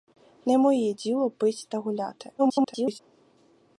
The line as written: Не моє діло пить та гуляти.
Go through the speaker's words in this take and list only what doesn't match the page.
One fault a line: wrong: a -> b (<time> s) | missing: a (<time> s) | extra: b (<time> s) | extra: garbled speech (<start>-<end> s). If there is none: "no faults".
extra: garbled speech (2.4-3.0 s)